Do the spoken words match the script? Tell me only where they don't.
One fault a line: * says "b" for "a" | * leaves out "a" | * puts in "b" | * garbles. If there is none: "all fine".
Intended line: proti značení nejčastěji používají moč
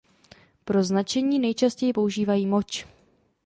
* says "pro" for "proti"